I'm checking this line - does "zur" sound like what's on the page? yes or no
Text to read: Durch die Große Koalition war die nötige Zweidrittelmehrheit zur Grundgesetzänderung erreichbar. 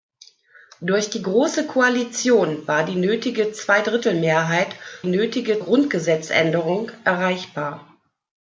no